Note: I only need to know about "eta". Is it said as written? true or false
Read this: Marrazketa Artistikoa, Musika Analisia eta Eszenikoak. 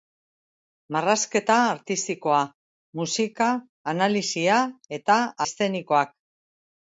true